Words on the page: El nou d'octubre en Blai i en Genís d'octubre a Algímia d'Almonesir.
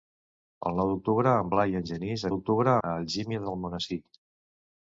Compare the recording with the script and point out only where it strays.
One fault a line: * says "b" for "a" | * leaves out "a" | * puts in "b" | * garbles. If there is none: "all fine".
all fine